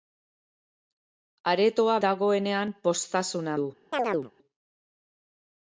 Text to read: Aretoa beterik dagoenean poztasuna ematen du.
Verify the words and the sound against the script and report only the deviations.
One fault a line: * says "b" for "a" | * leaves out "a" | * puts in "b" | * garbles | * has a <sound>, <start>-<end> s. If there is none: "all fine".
* leaves out "beterik"
* leaves out "ematen"
* has a chirp, 3.9-4.3 s